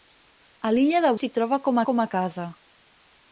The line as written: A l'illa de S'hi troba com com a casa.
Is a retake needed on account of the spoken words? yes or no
no